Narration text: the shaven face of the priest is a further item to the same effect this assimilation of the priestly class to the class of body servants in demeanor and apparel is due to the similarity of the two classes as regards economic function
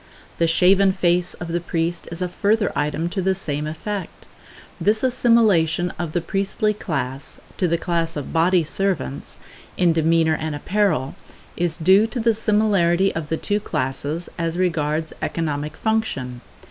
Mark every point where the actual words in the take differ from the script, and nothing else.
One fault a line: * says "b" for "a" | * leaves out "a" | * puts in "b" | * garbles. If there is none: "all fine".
all fine